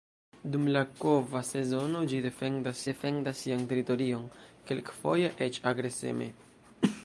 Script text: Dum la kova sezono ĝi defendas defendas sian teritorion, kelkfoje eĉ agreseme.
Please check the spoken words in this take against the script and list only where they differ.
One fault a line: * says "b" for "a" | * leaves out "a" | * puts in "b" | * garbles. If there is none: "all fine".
all fine